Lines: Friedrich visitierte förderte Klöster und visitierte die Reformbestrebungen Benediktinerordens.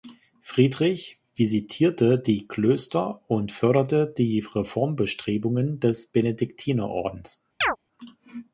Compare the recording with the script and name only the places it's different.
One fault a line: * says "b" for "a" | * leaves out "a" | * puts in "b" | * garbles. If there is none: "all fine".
* says "die" for "förderte"
* says "förderte" for "visitierte"
* puts in "des"